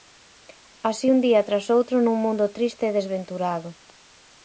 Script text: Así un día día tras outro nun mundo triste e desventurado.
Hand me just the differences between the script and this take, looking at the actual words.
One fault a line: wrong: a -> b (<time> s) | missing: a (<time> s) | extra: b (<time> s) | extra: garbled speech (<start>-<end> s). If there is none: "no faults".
missing: día (1.5 s)